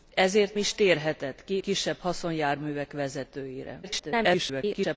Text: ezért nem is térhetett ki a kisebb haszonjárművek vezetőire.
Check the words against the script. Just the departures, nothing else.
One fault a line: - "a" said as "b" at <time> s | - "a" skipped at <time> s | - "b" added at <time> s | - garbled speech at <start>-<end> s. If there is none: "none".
- "nem" skipped at 0.6 s
- "a" skipped at 1.6 s
- garbled speech at 3.8-5.0 s